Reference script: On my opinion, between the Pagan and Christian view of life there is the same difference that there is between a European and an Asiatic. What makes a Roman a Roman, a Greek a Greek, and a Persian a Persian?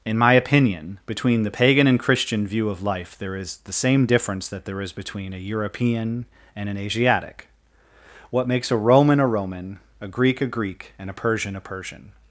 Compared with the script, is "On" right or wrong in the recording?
wrong